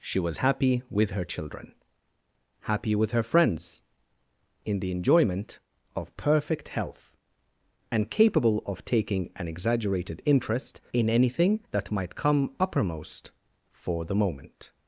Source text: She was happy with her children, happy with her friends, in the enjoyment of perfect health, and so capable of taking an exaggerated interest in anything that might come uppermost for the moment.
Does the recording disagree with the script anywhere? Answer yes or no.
yes